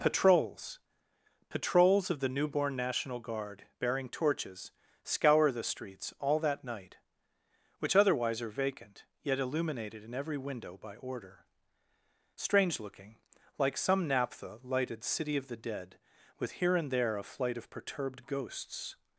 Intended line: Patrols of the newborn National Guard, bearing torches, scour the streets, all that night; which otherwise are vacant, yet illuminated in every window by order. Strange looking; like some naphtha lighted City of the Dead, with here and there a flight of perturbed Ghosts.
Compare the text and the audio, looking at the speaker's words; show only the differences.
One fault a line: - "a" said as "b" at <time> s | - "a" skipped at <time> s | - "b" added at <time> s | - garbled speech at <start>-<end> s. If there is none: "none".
- "patrols" added at 1.5 s